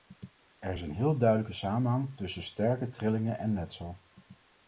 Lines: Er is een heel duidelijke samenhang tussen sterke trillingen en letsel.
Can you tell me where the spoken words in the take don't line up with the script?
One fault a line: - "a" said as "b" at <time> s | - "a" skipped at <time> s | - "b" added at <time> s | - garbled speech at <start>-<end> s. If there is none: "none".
none